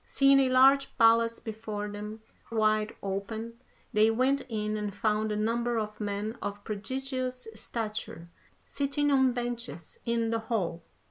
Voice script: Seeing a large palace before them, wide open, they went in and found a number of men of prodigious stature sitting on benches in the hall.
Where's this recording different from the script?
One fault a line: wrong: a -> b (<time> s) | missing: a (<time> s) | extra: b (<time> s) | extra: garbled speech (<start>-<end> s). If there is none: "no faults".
no faults